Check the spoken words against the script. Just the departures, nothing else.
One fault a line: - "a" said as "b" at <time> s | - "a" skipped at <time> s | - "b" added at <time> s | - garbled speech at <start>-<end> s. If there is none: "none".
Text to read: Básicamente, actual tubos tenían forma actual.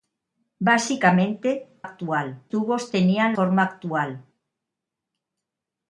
none